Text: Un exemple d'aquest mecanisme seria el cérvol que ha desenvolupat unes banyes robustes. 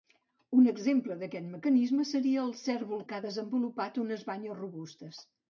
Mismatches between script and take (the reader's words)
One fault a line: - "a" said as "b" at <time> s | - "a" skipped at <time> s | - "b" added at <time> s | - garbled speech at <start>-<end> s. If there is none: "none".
none